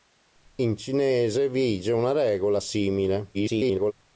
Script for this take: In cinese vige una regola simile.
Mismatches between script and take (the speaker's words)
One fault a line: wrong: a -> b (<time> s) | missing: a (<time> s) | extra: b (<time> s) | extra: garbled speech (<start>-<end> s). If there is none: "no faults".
extra: garbled speech (3.3-3.9 s)